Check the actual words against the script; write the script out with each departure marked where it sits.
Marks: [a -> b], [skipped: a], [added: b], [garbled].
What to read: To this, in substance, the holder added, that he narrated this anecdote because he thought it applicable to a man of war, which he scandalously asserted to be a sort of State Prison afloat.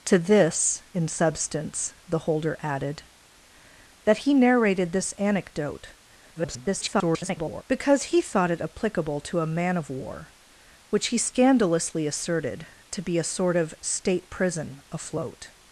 To this, in substance, the holder added, that he narrated this anecdote [garbled] because he thought it applicable to a man of war, which he scandalously asserted to be a sort of State Prison afloat.